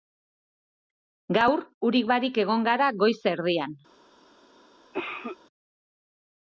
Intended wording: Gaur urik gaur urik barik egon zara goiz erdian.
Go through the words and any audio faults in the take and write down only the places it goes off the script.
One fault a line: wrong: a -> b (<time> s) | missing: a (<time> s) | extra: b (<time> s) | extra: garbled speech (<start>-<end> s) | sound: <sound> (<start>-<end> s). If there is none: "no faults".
missing: gaur urik (2.1 s)
wrong: zara -> gara (2.7 s)
sound: cough (4.9-5.4 s)